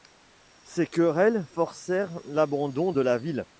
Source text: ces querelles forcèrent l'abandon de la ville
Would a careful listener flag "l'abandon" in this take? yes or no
no